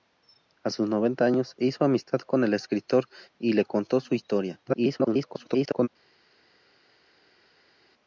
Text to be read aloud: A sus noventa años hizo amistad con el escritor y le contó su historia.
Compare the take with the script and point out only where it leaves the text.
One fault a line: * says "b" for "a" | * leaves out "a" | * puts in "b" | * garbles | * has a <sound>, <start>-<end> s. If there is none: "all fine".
* garbles